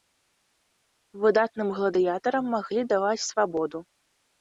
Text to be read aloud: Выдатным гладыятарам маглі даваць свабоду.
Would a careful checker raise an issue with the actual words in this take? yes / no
no